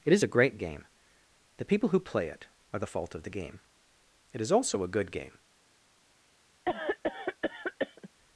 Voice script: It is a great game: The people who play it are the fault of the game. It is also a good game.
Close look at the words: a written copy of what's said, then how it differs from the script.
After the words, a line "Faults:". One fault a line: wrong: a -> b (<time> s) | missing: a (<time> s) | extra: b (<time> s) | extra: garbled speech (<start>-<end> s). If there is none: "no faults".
It is a great game: The people who play it are the fault of the game. It is also a good game.
Faults:
no faults